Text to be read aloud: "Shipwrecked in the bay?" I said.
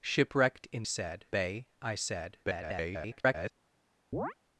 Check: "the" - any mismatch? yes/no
yes